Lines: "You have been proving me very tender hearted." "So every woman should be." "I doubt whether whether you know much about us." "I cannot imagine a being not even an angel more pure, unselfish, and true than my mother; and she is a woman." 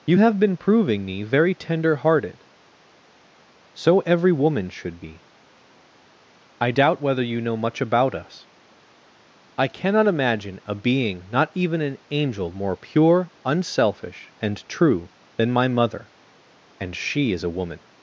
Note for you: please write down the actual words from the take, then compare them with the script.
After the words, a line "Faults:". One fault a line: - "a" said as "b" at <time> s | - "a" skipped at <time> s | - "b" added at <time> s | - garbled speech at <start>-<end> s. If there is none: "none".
"You have been proving me very tender hearted." "So every woman should be." "I doubt whether you know much about us." "I cannot imagine a being not even an angel more pure, unselfish, and true than my mother; and she is a woman."
Faults:
- "whether" skipped at 7.2 s